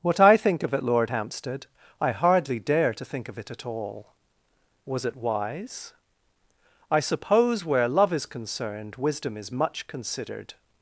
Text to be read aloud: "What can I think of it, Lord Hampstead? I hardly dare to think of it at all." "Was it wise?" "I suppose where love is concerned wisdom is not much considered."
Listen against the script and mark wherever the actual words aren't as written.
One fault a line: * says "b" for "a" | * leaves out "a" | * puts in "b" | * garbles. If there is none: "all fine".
* leaves out "can"
* leaves out "not"